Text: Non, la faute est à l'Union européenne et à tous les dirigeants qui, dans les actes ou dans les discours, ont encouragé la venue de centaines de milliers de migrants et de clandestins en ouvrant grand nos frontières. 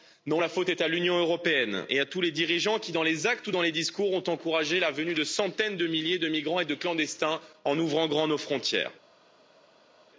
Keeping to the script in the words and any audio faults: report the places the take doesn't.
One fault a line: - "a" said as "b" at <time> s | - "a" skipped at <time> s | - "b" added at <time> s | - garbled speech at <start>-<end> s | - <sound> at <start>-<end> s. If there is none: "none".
none